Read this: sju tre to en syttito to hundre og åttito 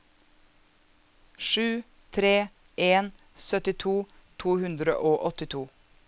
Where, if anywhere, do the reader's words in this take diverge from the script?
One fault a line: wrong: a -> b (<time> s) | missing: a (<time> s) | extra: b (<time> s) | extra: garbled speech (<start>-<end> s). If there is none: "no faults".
missing: to (2.5 s)